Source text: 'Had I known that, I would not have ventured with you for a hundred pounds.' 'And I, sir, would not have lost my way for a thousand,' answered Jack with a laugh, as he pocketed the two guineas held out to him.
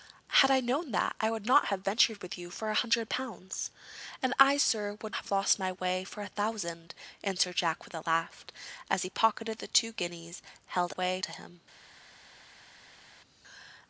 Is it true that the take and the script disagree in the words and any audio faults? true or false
true